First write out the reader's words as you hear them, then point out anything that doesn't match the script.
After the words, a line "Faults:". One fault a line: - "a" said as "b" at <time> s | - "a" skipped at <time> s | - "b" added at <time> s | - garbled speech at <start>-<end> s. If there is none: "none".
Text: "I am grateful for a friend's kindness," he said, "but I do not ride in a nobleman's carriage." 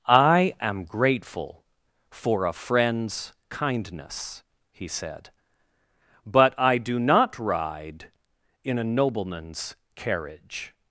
"I am grateful for a friend's kindness," he said, "but I do not ride in a nobleman's carriage."
Faults:
none